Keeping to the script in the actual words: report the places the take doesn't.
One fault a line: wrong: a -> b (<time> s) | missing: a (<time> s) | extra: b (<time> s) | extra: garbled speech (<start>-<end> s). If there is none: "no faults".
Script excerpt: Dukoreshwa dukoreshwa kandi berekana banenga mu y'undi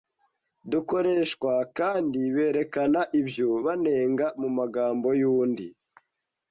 missing: dukoreshwa (1.5 s)
extra: ibyo (3.2 s)
extra: magambo (4.6 s)